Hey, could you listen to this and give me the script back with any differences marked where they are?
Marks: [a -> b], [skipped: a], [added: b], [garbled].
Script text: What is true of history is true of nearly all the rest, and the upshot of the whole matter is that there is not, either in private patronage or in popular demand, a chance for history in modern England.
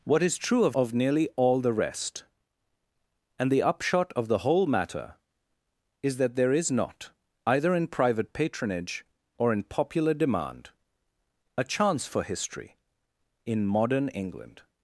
What is true of [skipped: history is true] of nearly all the rest, and the upshot of the whole matter is that there is not, either in private patronage or in popular demand, a chance for history in modern England.